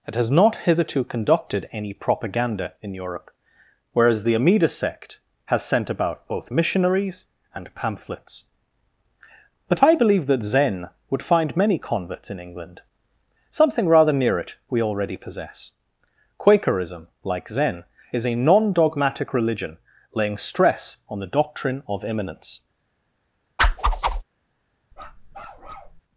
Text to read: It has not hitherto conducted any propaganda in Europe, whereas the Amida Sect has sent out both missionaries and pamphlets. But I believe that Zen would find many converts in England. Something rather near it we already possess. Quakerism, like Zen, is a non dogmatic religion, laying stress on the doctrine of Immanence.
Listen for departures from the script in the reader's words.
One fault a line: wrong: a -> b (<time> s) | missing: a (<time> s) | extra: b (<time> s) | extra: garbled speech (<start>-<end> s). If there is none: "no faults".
wrong: out -> about (5.9 s)